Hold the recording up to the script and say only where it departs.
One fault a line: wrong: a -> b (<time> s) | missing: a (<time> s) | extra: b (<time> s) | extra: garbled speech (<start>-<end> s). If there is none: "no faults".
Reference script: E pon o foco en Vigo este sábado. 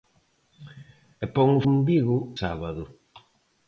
missing: foco (1.6 s)
missing: este (2.2 s)